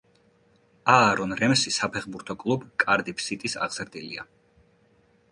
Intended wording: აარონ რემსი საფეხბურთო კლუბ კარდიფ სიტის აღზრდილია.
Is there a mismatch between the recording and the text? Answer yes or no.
no